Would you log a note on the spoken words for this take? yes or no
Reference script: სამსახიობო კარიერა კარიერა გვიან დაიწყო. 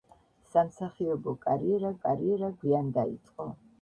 no